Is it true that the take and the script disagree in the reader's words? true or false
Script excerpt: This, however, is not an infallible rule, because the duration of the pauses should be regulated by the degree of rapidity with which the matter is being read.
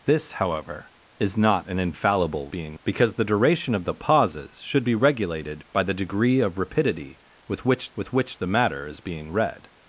true